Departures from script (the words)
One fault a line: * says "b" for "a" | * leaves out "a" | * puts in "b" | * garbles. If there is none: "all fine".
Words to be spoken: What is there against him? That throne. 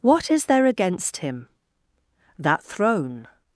all fine